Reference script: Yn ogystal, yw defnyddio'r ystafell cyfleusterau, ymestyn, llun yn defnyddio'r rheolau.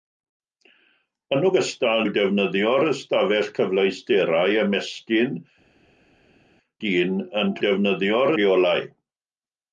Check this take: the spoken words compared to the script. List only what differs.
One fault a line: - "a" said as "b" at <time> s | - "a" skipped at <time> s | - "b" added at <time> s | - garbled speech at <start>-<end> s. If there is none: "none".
none